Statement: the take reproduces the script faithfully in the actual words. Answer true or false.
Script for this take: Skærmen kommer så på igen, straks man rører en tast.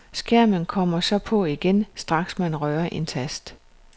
true